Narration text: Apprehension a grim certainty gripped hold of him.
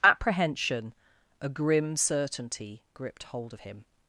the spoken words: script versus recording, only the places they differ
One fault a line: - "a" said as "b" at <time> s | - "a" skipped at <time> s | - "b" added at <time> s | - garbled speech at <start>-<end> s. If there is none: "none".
none